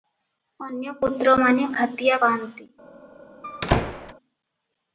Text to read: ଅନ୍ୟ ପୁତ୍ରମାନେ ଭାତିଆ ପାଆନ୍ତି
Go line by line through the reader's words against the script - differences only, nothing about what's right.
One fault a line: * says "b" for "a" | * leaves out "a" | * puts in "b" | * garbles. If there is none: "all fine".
all fine